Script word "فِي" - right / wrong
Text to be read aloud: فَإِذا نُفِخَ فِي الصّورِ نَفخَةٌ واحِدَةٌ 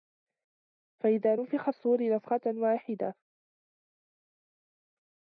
wrong